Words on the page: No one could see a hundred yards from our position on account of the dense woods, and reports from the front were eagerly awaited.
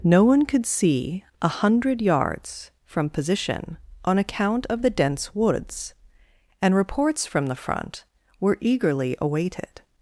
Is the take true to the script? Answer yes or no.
no